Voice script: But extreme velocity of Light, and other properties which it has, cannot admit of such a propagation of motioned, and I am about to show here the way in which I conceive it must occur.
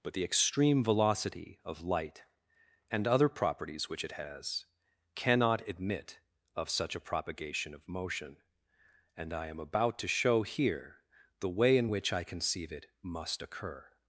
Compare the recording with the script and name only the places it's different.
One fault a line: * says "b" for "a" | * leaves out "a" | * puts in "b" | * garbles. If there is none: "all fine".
* puts in "the"
* says "motion" for "motioned"